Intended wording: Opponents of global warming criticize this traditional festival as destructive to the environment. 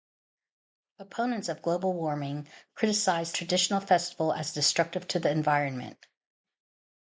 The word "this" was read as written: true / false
false